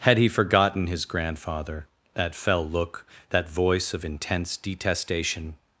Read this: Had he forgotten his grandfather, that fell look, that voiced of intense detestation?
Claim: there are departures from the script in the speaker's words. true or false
true